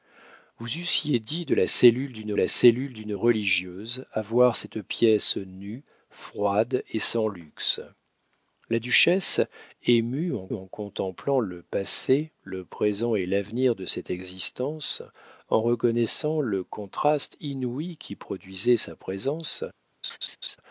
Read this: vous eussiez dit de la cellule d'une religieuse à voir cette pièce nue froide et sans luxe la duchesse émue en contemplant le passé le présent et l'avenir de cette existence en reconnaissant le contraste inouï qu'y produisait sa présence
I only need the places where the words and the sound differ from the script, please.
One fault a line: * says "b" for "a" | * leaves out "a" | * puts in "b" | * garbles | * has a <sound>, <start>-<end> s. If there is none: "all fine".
* puts in "la cellule d'une"
* puts in "en"
* has a laugh, 20.0-20.6 s